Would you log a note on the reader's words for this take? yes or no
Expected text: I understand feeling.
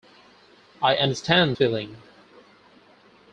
no